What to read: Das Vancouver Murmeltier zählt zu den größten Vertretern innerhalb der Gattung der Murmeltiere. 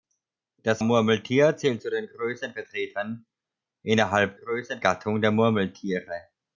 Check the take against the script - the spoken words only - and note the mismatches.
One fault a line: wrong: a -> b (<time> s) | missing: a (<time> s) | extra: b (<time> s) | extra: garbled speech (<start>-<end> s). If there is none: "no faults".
missing: Vancouver (0.8 s)
wrong: der -> größten (4.3 s)